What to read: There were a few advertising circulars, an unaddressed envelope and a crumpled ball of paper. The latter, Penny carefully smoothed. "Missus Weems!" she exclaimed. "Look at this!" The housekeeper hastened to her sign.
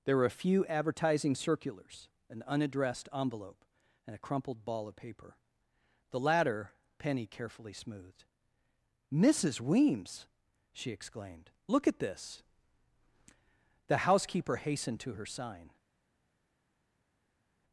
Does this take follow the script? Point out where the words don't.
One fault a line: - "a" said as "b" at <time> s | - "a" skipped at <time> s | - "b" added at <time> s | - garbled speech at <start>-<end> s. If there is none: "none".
none